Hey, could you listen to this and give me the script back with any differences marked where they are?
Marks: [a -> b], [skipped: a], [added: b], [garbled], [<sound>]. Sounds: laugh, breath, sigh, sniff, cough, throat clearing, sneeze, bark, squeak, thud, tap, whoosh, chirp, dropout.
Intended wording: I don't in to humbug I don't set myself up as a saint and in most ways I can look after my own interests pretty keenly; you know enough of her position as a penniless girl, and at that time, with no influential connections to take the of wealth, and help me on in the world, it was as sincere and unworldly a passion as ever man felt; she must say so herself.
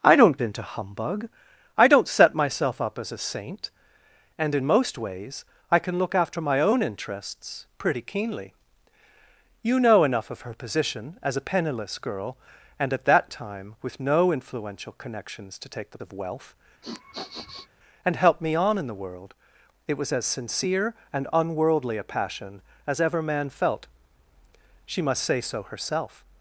I don't in to humbug I don't set myself up as a saint and in most ways I can look after my own interests pretty keenly; you know enough of her position as a penniless girl, and at that time, with no influential connections to take the of wealth, [sniff] and help me on in the world, it was as sincere and unworldly a passion as ever man felt; she must say so herself.